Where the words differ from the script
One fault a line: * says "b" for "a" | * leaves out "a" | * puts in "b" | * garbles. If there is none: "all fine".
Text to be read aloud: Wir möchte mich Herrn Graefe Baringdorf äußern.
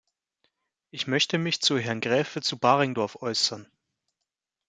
* says "Ich" for "Wir"
* puts in "zu"
* puts in "zu"